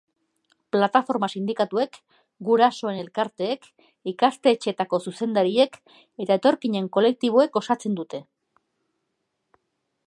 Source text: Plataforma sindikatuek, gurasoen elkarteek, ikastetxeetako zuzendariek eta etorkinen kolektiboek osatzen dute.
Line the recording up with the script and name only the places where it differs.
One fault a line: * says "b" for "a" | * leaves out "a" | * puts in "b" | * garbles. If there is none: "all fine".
all fine